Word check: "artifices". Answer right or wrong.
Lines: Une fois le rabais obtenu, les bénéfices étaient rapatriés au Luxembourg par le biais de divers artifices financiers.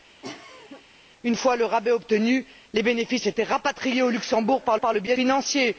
wrong